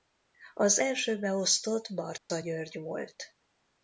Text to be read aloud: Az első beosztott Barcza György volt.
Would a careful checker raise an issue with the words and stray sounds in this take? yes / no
yes